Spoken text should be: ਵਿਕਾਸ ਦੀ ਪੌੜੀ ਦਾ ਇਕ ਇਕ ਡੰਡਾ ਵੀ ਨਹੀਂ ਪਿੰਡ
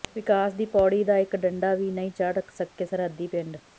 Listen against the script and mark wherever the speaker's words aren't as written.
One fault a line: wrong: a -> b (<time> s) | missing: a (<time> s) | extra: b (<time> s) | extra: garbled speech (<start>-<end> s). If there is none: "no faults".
missing: ਇਕ (1.4 s)
extra: ਚੜ੍ਹ ਸਕੇ ਸਰਹੱਦੀ (2.1 s)